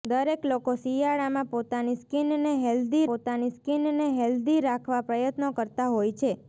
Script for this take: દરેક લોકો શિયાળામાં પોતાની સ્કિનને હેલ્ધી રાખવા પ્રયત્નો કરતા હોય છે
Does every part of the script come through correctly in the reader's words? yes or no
no